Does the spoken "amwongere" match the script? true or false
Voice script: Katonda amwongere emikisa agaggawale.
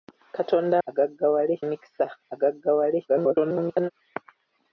false